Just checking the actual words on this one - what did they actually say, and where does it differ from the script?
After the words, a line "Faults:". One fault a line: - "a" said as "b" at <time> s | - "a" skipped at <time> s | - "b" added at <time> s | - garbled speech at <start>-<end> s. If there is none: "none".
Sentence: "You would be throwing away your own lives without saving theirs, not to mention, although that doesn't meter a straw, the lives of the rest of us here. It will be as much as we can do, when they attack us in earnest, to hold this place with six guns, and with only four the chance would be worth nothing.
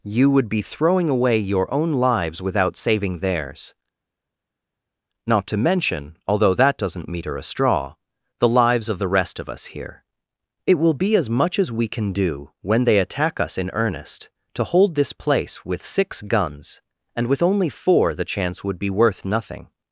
"You would be throwing away your own lives without saving theirs, not to mention, although that doesn't meter a straw, the lives of the rest of us here. It will be as much as we can do, when they attack us in earnest, to hold this place with six guns, and with only four the chance would be worth nothing.
Faults:
none